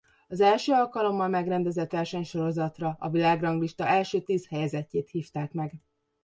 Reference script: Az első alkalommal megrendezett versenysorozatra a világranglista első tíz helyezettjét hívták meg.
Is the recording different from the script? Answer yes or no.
no